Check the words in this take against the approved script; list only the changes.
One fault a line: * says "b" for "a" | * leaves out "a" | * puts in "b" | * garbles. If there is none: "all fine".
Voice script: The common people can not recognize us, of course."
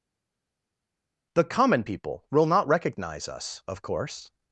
* says "will" for "can"